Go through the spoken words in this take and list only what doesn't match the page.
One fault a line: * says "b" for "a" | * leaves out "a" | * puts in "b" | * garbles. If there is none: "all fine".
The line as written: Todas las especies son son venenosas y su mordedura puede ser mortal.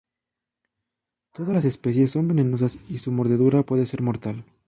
* leaves out "son"